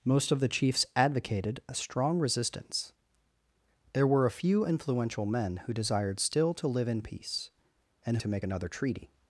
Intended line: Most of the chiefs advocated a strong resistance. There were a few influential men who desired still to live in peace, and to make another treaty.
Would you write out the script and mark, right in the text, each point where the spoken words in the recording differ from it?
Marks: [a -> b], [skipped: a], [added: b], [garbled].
Most of the chiefs advocated a strong resistance. There were a few influential men who desired still to live in peace, and to make another treaty.